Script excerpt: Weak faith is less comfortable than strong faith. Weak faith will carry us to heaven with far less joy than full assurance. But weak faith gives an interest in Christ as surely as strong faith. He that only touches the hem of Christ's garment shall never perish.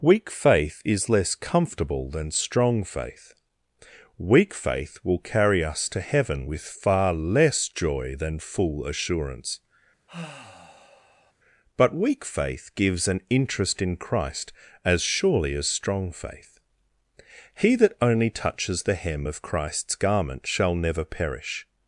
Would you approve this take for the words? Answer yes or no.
yes